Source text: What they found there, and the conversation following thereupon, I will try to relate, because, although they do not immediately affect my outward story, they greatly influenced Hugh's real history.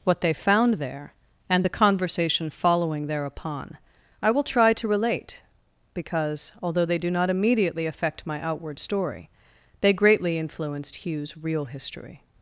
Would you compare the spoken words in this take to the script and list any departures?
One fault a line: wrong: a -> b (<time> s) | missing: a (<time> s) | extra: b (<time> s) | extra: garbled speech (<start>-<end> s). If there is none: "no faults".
no faults